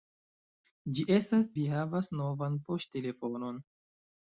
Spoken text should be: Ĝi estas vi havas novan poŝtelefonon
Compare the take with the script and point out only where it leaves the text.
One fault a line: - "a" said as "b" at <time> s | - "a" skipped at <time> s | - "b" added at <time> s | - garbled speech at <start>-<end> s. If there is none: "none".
none